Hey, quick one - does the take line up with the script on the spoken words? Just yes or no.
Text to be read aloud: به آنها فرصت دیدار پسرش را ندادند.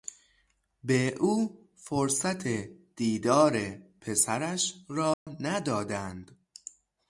no